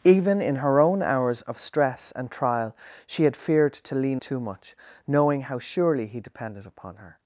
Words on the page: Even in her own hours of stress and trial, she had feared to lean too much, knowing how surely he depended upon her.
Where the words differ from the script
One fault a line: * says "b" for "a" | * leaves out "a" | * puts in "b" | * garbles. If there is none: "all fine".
all fine